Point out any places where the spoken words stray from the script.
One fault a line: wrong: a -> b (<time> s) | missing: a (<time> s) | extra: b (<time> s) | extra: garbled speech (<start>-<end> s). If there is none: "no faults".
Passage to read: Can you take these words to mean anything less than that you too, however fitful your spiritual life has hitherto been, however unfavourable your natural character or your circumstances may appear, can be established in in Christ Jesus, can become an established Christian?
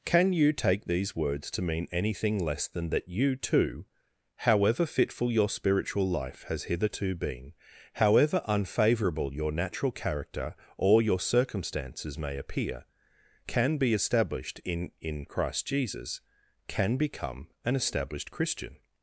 no faults